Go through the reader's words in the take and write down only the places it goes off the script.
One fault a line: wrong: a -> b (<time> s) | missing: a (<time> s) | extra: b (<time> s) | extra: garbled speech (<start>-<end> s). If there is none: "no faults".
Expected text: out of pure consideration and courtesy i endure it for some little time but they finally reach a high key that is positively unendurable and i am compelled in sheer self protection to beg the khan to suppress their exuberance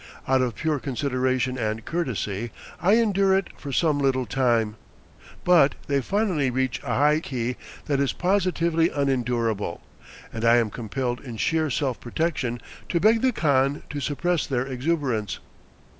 no faults